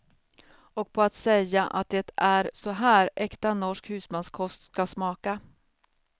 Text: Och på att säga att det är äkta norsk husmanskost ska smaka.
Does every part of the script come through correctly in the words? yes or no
no